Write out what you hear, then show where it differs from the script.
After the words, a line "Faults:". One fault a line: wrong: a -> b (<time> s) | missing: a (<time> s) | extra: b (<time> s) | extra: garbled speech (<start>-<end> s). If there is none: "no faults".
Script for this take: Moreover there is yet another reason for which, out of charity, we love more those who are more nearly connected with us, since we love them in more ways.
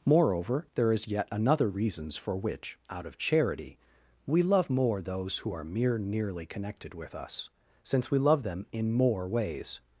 Moreover there is yet another reasons for which, out of charity, we love more those who are mere nearly connected with us, since we love them in more ways.
Faults:
wrong: reason -> reasons (1.7 s)
wrong: more -> mere (5.6 s)